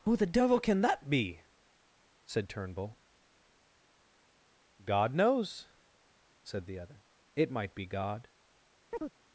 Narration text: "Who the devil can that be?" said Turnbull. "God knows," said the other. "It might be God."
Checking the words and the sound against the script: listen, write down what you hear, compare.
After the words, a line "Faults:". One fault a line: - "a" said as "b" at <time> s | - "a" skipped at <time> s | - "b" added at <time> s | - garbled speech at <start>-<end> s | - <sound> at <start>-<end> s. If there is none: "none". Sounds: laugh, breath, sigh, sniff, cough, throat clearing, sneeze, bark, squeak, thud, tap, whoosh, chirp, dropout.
"Who the devil can that be?" said Turnbull. "God knows," said the other. "It might be God."
Faults:
- chirp at 8.9-9.1 s